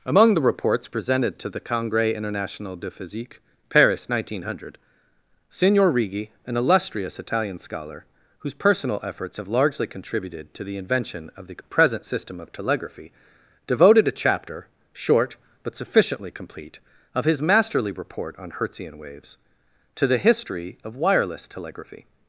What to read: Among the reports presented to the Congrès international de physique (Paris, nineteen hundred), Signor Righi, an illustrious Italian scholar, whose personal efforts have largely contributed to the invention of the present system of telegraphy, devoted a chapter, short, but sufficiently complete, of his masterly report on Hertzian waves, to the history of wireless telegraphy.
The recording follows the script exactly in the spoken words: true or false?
true